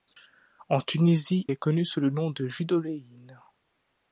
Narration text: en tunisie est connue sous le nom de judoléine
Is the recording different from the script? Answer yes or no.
no